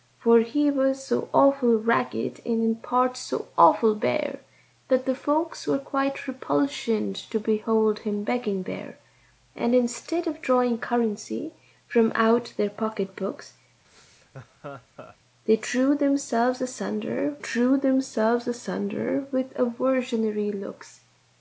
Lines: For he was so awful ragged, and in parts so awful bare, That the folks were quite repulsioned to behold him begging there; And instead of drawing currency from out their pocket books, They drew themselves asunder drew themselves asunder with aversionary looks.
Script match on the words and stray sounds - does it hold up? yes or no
no